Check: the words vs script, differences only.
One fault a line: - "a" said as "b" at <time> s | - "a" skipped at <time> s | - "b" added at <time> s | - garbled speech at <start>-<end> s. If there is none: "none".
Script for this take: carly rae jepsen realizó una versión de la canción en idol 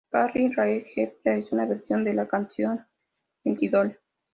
none